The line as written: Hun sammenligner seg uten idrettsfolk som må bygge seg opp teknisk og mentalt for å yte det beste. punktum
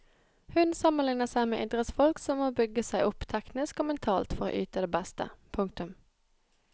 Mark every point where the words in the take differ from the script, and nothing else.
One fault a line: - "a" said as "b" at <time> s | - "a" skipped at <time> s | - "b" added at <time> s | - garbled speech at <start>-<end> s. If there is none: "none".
- "uten" said as "med" at 1.5 s